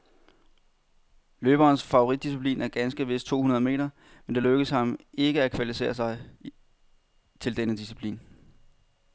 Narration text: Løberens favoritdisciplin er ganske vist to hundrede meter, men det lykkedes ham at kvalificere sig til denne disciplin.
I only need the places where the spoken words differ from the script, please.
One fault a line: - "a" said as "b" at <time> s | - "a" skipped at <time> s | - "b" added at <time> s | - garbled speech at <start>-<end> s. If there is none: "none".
- "ikke" added at 5.1 s